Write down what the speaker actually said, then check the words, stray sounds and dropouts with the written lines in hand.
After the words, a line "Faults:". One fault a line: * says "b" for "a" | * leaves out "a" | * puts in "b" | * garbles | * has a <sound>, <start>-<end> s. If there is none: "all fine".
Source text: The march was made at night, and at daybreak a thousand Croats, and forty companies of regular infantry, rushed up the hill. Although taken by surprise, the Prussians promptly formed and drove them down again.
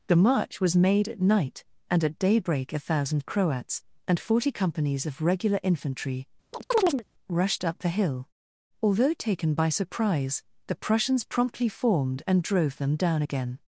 The march was made at night, and at daybreak a thousand Croats, and forty companies of regular infantry, rushed up the hill. Although taken by surprise, the Prussians promptly formed and drove them down again.
Faults:
* has a chirp, 6.5-7.0 s